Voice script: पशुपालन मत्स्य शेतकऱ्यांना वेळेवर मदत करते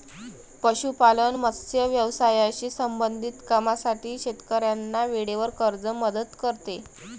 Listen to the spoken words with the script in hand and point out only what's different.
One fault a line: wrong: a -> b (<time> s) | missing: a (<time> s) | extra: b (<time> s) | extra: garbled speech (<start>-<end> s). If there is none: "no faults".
extra: व्यवसायाशी संबंधित कामांसाठी (1.9 s)
extra: कर्ज (5.6 s)